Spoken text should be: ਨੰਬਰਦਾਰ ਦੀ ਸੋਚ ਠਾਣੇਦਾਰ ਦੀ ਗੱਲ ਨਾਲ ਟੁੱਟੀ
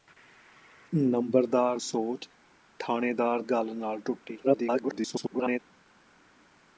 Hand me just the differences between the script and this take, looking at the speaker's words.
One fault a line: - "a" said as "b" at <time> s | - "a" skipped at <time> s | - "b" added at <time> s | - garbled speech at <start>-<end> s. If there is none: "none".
- "ਦੀ" skipped at 1.8 s
- "ਦੀ" skipped at 3.4 s
- garbled speech at 4.4-5.6 s